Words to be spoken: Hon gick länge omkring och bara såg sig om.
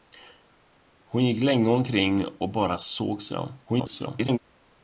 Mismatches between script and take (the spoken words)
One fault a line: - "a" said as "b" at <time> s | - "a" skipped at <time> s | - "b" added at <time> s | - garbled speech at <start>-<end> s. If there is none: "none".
- garbled speech at 3.7-4.4 s